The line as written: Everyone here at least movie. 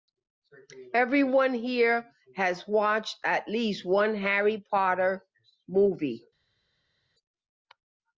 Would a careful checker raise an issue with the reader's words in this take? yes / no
yes